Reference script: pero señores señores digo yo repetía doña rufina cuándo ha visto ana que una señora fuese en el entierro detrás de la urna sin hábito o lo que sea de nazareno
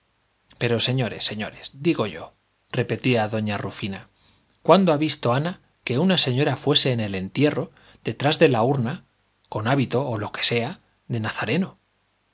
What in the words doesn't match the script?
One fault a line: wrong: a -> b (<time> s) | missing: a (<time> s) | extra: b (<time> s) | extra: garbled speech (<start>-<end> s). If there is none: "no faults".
wrong: sin -> con (9.5 s)